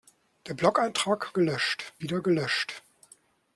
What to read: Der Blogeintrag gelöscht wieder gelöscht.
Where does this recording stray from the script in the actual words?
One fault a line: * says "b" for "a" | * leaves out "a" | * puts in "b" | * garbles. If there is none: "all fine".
all fine